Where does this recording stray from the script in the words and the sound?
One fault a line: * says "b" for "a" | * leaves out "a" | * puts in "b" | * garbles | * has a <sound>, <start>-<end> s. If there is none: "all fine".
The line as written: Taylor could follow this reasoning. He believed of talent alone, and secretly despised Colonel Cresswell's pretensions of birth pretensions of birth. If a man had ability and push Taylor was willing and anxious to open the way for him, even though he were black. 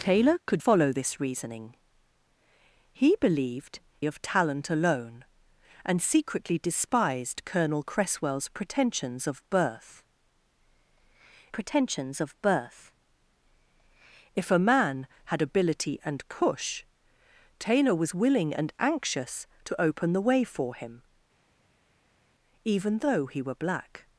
all fine